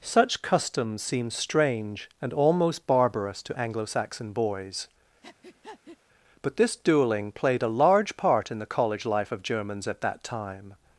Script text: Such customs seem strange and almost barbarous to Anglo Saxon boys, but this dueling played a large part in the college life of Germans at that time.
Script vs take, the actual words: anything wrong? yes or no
no